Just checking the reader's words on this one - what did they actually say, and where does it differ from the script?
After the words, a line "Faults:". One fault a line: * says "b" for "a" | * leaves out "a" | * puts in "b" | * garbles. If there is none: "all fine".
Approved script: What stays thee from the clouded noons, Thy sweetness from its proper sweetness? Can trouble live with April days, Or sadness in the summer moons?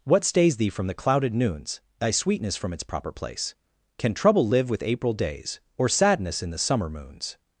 What stays thee from the clouded noons, Thy sweetness from its proper place? Can trouble live with April days, Or sadness in the summer moons?
Faults:
* says "place" for "sweetness"